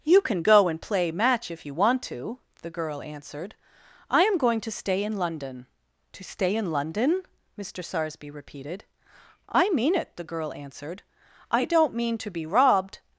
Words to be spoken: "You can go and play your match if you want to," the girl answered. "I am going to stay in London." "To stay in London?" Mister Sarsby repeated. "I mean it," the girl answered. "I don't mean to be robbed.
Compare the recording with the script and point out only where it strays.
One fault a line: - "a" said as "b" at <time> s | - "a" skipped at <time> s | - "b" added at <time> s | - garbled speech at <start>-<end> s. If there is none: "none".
- "your" skipped at 1.1 s